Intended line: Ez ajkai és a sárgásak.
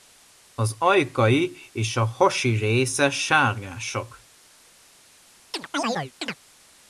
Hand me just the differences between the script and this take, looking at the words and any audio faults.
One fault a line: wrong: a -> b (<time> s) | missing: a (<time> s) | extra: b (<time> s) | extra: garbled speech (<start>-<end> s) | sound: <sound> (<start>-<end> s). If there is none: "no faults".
wrong: Ez -> Az (0.5 s)
extra: hasi része (2.0 s)
sound: chirp (5.5-6.4 s)